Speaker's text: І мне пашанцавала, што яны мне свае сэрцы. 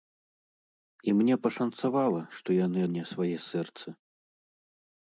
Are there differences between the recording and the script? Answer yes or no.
no